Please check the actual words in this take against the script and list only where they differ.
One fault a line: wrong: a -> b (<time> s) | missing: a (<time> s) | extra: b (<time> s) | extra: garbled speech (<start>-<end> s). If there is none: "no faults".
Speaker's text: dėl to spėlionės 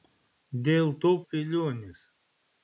no faults